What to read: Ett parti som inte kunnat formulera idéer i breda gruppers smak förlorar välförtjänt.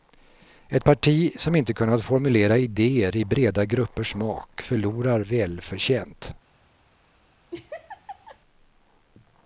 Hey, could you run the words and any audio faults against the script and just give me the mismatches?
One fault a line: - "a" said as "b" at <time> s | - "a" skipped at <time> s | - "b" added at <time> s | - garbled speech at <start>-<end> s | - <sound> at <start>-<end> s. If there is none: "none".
- laugh at 7.5-8.4 s